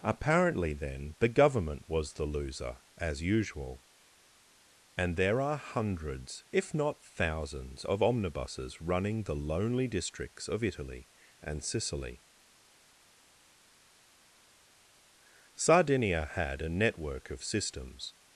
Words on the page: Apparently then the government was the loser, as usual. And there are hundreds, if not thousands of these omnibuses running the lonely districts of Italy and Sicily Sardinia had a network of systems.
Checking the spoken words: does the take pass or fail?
fail